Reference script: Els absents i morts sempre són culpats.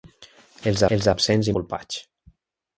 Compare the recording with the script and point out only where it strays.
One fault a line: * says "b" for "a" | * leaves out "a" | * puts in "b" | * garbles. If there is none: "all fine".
* puts in "els"
* leaves out "morts sempre són"